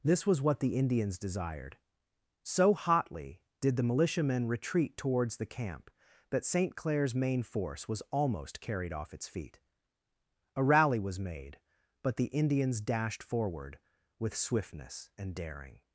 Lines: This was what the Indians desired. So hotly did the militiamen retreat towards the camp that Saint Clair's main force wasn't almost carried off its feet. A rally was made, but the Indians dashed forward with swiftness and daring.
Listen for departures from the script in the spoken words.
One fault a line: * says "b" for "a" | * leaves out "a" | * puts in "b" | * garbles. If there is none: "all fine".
* says "was" for "wasn't"